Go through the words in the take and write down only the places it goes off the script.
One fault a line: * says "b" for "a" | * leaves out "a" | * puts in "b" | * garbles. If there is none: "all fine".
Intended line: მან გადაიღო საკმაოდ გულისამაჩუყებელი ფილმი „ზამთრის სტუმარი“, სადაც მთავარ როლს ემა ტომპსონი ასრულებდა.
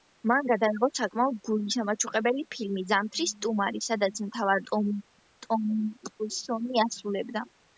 * leaves out "როლს ემა"